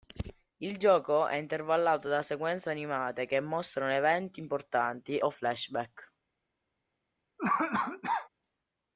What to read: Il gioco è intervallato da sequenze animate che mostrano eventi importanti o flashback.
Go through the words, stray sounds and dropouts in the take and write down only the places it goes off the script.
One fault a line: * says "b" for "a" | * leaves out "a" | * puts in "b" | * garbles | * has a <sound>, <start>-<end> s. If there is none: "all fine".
* has a cough, 7.4-8.3 s